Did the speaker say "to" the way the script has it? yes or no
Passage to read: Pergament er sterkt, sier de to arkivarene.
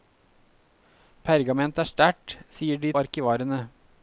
no